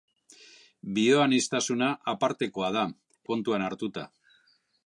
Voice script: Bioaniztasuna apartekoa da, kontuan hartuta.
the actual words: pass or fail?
pass